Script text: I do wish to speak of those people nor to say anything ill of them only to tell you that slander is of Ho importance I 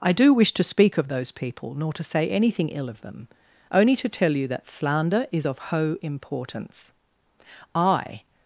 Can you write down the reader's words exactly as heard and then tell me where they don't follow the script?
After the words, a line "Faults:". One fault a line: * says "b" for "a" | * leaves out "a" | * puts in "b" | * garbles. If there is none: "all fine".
I do wish to speak of those people nor to say anything ill of them only to tell you that slander is of Ho importance I
Faults:
all fine